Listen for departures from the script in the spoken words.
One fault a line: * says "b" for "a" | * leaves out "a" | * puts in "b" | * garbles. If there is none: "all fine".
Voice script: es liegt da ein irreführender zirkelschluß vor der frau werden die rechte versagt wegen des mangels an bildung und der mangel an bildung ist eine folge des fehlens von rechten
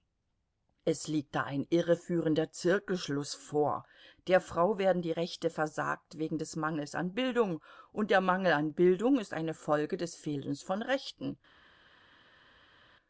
all fine